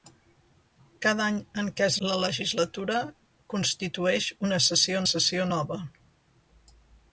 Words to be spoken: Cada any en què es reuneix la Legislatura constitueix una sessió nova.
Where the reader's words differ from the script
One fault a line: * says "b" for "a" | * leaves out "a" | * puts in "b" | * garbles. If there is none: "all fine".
* leaves out "reuneix"
* puts in "sessió"